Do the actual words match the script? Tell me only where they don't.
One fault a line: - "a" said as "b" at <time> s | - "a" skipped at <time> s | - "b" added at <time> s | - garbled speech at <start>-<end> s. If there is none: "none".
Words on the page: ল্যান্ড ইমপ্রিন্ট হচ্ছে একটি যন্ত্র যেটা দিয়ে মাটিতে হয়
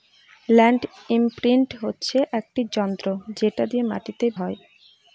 none